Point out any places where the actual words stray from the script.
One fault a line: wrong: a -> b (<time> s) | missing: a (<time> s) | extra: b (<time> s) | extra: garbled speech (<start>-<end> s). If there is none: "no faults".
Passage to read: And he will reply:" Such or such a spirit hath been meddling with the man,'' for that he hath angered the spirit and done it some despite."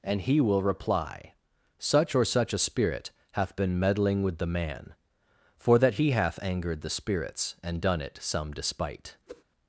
wrong: spirit -> spirits (6.9 s)